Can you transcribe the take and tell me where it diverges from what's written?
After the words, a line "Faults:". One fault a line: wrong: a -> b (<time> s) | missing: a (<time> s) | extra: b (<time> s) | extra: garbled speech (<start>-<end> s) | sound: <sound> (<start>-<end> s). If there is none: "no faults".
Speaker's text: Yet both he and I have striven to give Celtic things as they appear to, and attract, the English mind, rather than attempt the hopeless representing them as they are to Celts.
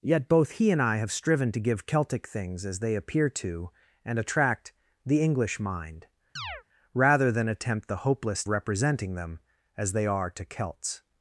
Yet both he and I have striven to give Celtic things as they appear to, and attract, the English mind, rather than attempt the hopeless representing them as they are to Celts.
Faults:
sound: chirp (6.4-6.6 s)